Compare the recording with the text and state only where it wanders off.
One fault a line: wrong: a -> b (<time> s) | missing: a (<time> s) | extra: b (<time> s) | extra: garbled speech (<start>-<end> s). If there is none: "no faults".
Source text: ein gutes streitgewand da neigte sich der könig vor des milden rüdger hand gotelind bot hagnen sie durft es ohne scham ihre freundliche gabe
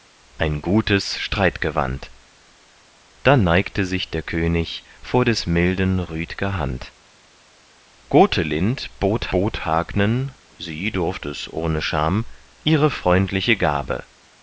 extra: bot (9.3 s)